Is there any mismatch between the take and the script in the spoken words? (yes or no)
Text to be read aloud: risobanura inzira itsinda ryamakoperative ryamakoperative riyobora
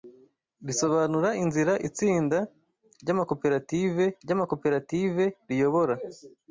no